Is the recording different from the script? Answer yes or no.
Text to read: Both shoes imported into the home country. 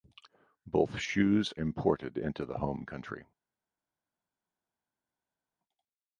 no